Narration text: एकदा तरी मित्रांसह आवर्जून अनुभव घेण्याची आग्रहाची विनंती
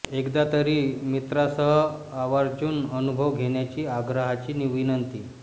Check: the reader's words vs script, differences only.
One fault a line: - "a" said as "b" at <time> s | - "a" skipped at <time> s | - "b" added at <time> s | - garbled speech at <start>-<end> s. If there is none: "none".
none